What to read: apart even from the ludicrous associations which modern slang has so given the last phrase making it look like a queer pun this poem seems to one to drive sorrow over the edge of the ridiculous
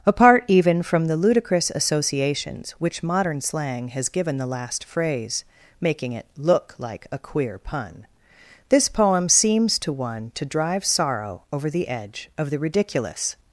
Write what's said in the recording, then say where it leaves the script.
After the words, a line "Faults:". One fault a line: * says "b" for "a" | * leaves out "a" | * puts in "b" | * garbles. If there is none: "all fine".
apart even from the ludicrous associations which modern slang has given the last phrase making it look like a queer pun this poem seems to one to drive sorrow over the edge of the ridiculous
Faults:
* leaves out "so"